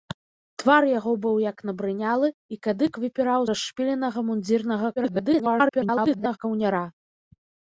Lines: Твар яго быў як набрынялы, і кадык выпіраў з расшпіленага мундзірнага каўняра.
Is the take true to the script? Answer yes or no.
no